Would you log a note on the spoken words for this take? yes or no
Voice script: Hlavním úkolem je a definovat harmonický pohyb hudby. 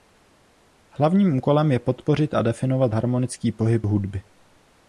yes